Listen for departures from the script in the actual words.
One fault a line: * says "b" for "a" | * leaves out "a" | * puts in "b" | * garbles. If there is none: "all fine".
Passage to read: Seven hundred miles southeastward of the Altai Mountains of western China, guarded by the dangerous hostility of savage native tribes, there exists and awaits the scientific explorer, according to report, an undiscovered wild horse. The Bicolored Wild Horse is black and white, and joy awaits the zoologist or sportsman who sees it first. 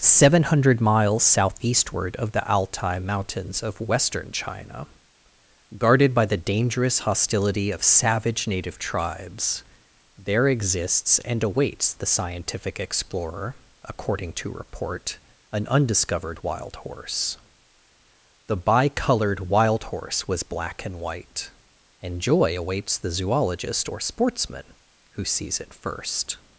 * says "was" for "is"